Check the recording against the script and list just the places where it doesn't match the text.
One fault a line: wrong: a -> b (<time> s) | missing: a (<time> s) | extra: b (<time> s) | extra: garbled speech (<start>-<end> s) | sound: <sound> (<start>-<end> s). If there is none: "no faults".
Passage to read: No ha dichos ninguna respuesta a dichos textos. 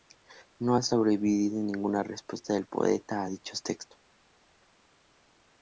wrong: dichos -> sobrevivido (0.8 s)
extra: del poeta (2.5 s)